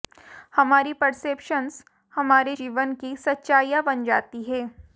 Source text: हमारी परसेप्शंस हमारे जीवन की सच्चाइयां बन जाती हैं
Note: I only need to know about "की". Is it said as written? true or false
true